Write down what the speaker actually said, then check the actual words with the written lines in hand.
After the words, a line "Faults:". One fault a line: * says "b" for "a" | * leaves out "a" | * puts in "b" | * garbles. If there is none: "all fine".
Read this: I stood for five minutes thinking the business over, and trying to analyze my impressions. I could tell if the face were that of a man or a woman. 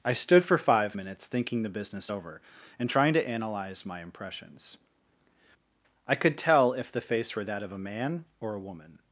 I stood for five minutes thinking the business over, and trying to analyze my impressions. I could tell if the face were that of a man or a woman.
Faults:
all fine